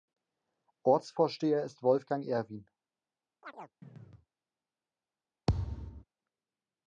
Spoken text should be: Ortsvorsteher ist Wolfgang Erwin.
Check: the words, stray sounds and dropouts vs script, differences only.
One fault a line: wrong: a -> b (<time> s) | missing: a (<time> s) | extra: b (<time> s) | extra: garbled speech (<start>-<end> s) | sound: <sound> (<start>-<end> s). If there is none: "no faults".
sound: chirp (3.4-4.3 s)
sound: thud (5.5-6.0 s)